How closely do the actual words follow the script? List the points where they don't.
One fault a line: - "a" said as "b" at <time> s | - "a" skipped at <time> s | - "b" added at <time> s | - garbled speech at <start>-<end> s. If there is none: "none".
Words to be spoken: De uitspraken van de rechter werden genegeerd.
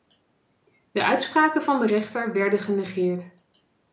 none